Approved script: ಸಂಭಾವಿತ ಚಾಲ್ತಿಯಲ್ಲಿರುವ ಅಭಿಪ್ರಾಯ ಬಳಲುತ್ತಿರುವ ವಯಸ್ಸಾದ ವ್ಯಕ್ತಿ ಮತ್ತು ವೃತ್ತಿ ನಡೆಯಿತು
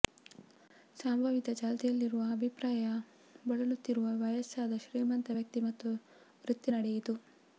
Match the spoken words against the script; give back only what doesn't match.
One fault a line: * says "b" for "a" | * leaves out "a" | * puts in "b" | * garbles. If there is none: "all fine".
* puts in "ಶ್ರೀಮಂತ"